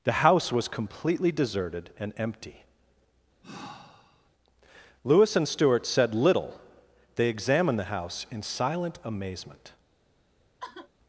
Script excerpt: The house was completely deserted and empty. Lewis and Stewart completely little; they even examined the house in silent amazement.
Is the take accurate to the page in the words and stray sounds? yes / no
no